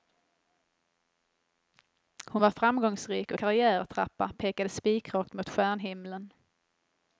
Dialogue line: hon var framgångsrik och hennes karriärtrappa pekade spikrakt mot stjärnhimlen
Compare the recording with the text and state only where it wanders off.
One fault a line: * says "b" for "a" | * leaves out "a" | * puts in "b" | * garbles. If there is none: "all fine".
* leaves out "hennes"